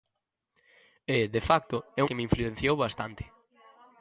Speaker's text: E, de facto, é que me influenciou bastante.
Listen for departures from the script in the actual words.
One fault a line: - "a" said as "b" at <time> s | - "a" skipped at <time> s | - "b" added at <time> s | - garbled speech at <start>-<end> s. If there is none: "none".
none